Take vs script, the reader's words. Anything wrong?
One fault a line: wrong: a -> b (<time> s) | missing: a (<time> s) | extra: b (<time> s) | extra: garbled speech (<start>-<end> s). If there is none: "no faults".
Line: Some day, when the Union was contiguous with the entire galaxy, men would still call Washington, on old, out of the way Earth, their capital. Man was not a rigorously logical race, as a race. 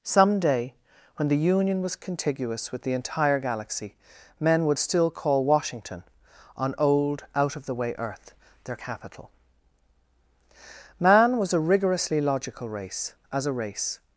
missing: not (11.5 s)